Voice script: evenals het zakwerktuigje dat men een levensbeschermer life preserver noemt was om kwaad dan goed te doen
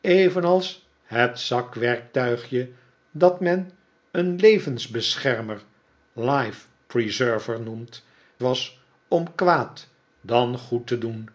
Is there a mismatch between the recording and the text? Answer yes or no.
no